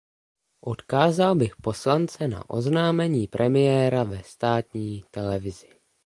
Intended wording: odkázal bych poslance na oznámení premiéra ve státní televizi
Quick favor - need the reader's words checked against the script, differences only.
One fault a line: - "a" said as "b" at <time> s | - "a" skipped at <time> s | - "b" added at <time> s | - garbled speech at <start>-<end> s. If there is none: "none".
none